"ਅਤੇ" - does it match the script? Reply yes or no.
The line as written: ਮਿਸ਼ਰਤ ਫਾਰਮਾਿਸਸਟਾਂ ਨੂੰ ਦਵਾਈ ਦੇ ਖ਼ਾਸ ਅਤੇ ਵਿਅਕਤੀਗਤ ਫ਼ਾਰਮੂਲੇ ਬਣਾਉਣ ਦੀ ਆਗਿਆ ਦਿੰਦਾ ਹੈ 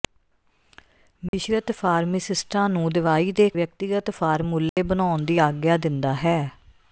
no